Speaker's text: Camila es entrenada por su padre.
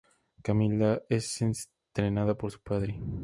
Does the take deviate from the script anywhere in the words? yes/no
no